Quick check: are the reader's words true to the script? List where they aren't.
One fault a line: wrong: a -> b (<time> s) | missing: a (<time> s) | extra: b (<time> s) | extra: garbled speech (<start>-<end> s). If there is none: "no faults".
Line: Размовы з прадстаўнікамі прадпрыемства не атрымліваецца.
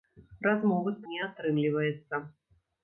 missing: прадстаўнікамі прадпрыемства (1.0 s)